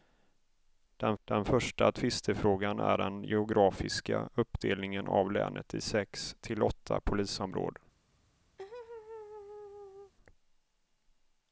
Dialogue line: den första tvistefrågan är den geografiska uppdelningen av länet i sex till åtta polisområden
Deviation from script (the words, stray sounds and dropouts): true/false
true